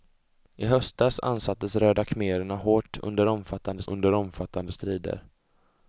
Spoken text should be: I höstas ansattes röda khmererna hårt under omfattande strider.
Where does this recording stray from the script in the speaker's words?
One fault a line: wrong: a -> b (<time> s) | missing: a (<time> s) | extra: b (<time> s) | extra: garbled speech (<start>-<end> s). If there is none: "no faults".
extra: under omfattande (3.9 s)